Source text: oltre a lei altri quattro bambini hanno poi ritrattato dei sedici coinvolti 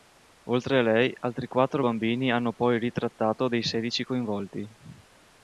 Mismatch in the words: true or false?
false